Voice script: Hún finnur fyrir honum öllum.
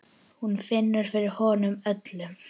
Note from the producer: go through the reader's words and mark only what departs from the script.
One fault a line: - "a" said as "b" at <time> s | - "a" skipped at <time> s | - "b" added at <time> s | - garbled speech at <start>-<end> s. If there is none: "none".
none